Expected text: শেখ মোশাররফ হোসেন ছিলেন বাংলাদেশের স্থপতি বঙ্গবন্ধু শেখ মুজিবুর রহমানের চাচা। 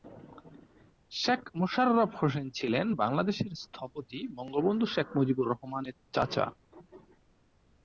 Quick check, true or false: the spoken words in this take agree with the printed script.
true